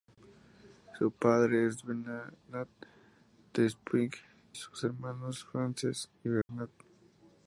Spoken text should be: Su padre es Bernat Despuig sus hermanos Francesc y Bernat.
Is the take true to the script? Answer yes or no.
yes